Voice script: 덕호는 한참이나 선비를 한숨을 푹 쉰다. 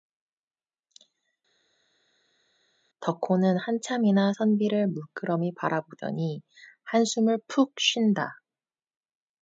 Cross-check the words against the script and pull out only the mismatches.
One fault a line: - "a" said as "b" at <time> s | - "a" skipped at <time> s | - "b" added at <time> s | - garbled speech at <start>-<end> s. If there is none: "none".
- "물끄러미 바라보더니" added at 4.8 s